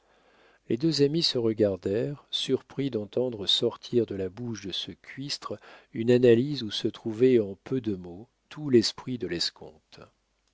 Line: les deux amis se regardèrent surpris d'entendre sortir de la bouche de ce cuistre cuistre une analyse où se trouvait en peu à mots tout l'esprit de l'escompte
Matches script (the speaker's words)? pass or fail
fail